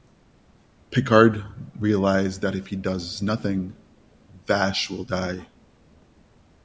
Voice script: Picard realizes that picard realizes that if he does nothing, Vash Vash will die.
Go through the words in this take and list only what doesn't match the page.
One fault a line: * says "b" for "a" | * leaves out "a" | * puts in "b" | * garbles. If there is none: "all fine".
* leaves out "picard realizes that"
* leaves out "Vash"